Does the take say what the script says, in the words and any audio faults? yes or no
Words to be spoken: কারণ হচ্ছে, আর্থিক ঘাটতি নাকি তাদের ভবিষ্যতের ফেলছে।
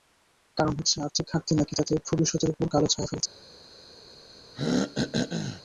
no